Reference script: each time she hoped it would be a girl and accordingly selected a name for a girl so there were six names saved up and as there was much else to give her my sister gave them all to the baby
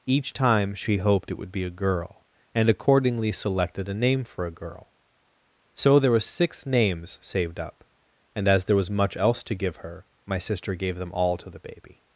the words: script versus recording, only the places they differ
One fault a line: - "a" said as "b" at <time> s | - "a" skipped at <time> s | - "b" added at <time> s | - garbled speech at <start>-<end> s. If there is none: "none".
none